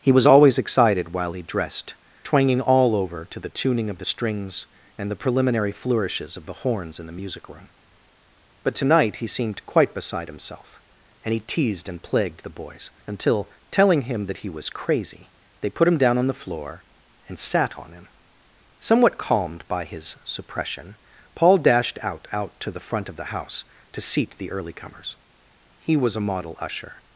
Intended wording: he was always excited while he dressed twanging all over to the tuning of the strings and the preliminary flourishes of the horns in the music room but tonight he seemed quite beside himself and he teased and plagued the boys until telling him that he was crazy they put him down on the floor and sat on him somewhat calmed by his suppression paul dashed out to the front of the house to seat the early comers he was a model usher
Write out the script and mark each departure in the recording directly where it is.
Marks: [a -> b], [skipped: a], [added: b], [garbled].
he was always excited while he dressed twanging all over to the tuning of the strings and the preliminary flourishes of the horns in the music room but tonight he seemed quite beside himself and he teased and plagued the boys until telling him that he was crazy they put him down on the floor and sat on him somewhat calmed by his suppression paul dashed out [added: out] to the front of the house to seat the early comers he was a model usher